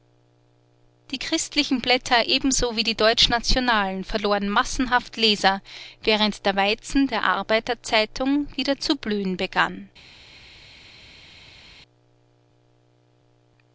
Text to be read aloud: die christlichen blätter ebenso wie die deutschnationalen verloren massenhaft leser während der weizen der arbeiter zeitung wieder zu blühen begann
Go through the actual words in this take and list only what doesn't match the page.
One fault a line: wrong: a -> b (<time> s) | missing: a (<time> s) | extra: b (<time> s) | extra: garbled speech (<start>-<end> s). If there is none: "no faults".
no faults